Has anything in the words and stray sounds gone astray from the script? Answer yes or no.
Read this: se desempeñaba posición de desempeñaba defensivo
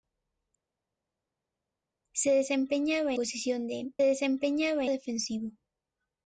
no